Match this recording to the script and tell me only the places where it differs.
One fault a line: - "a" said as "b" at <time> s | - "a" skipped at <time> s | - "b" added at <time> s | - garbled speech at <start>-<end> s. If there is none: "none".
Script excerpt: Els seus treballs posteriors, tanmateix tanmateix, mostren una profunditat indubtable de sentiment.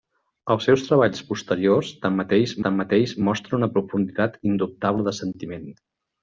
none